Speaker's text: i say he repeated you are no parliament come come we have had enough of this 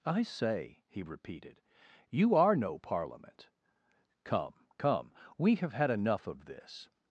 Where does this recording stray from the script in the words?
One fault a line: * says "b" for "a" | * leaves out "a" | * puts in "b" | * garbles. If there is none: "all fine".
all fine